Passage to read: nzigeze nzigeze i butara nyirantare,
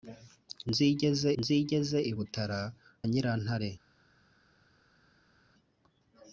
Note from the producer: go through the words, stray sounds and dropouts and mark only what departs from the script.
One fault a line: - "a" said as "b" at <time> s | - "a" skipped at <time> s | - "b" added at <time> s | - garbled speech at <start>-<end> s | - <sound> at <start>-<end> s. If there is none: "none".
none